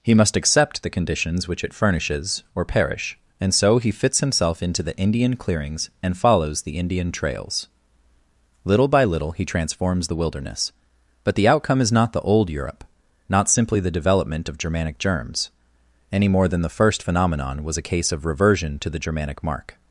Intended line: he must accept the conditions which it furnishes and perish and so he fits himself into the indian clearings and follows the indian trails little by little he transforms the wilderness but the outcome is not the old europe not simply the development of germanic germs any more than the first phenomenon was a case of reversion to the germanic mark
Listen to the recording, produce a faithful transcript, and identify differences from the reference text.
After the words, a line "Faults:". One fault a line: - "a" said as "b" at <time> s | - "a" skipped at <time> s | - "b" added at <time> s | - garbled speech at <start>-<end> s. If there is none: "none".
he must accept the conditions which it furnishes or perish and so he fits himself into the indian clearings and follows the indian trails little by little he transforms the wilderness but the outcome is not the old europe not simply the development of germanic germs any more than the first phenomenon was a case of reversion to the germanic mark
Faults:
- "and" said as "or" at 2.5 s